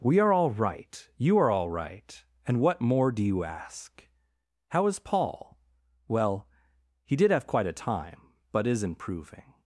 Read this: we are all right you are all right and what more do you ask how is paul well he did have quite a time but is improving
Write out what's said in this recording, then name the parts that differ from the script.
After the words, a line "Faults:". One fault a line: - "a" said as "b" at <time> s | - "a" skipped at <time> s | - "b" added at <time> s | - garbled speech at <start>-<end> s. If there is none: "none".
we are all right you are all right and what more do you ask how is paul well he did have quite a time but is improving
Faults:
none